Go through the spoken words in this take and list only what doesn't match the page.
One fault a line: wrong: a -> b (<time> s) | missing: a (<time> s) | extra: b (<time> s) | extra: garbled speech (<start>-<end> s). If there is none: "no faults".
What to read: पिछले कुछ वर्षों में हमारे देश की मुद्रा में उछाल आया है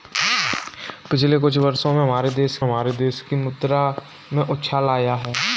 extra: हमारे देश (2.6 s)